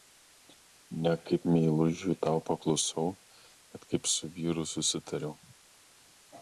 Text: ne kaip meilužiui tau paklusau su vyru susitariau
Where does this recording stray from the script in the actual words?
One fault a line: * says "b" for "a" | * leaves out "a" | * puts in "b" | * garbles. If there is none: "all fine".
* puts in "bet kaip"